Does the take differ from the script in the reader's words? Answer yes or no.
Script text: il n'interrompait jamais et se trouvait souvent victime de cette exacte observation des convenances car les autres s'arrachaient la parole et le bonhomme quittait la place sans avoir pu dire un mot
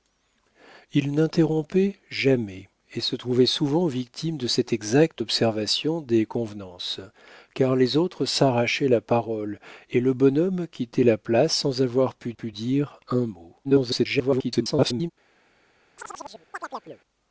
yes